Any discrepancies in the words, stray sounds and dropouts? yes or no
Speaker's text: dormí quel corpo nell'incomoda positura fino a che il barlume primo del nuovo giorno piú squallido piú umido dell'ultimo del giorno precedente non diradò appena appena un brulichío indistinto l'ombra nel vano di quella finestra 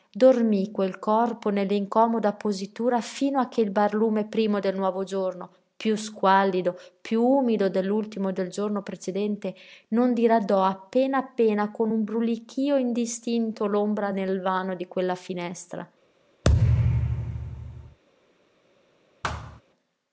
yes